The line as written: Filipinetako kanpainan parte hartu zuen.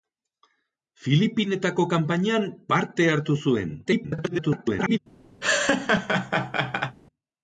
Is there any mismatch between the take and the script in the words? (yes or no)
yes